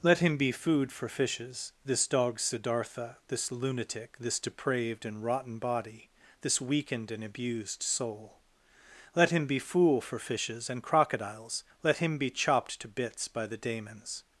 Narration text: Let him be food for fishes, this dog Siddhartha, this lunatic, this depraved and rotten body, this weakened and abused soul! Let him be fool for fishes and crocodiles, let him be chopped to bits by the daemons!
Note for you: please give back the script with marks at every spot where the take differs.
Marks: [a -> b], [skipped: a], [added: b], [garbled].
Let him be food for fishes, this dog Siddhartha, this lunatic, this depraved and rotten body, this weakened and abused soul! Let him be fool for fishes and crocodiles, let him be chopped to bits by the daemons!